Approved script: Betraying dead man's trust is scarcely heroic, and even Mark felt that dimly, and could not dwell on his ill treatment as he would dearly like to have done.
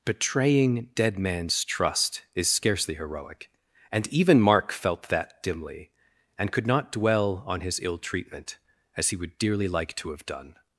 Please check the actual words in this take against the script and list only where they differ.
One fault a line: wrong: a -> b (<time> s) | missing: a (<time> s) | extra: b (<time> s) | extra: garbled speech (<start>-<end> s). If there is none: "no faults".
no faults